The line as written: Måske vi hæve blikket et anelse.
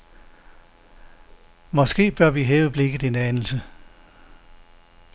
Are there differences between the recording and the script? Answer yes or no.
yes